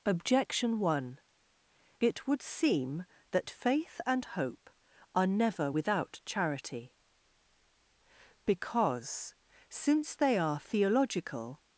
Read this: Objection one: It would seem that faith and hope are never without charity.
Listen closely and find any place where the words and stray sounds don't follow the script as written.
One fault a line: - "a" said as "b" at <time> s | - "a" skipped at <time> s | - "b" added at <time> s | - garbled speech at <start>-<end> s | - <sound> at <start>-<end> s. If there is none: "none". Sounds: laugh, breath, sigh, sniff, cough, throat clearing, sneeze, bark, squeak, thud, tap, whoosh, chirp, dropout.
- "Because since they are theological" added at 8.4 s